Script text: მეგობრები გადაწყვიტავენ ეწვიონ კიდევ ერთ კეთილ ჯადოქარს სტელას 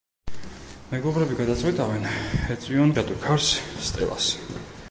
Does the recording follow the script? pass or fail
fail